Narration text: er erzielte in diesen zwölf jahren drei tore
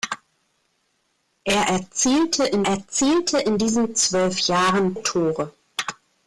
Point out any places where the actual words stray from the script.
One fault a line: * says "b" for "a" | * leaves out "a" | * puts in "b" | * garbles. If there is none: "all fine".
* puts in "erzielte in"
* leaves out "drei"